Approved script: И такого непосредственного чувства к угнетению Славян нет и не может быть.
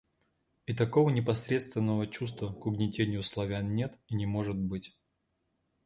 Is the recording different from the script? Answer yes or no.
no